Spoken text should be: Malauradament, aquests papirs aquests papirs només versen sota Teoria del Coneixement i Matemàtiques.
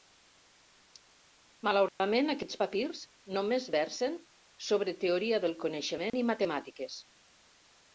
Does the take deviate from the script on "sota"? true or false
true